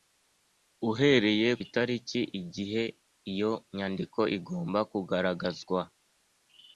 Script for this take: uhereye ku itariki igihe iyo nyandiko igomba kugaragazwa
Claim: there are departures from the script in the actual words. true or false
true